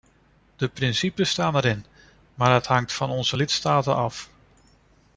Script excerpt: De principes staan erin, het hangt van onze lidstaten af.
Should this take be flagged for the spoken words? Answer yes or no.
yes